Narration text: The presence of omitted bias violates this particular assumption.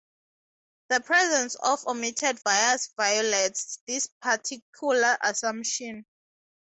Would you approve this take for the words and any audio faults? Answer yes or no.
yes